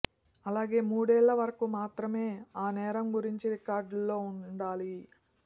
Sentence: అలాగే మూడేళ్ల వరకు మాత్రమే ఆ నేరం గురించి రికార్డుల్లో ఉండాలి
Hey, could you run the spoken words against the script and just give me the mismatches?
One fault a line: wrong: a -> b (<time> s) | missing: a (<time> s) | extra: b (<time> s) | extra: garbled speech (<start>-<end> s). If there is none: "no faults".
no faults